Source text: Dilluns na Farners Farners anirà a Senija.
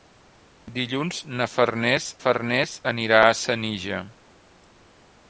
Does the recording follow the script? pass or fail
pass